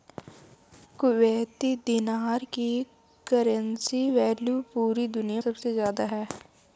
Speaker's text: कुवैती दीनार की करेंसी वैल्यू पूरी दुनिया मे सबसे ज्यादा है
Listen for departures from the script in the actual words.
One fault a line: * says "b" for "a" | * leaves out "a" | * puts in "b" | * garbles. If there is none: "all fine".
* leaves out "मे"